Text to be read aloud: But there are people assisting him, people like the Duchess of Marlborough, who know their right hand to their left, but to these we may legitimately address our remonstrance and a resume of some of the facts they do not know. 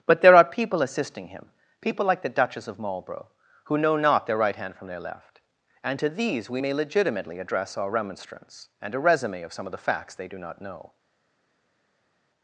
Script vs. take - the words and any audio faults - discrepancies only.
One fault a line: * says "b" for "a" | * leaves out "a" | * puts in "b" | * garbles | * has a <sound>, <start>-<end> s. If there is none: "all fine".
* puts in "not"
* says "from" for "to"
* says "and" for "but"